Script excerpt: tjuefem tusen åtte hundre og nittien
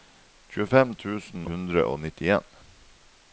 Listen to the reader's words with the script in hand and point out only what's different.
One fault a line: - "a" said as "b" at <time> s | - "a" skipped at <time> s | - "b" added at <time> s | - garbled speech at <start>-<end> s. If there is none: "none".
- "åtte" skipped at 1.4 s